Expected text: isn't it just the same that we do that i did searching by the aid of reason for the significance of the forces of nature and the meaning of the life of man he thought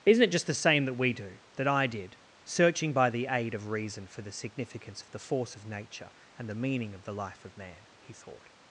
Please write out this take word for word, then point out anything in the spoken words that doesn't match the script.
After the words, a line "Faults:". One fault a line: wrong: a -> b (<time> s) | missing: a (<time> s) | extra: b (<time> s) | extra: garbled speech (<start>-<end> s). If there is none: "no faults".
isn't it just the same that we do that i did searching by the aid of reason for the significance of the force of nature and the meaning of the life of man he thought
Faults:
wrong: forces -> force (5.2 s)